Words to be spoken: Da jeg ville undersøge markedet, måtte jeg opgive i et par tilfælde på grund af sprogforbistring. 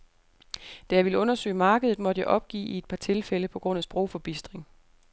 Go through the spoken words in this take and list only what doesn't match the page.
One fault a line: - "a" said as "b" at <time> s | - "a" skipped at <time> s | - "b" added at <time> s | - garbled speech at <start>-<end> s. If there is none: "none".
none